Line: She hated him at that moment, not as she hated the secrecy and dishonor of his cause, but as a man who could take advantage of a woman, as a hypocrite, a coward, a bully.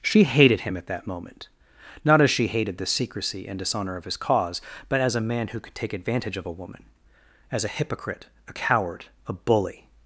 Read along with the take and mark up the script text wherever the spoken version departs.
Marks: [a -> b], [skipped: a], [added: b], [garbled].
She hated him at that moment, not as she hated the secrecy and dishonor of his cause, but as a man who could take advantage of a woman, as a hypocrite, a coward, a bully.